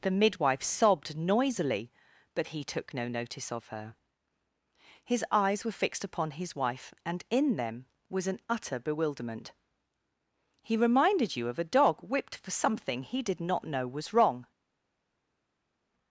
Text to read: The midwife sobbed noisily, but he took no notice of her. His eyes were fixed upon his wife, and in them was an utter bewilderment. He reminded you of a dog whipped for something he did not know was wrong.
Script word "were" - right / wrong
right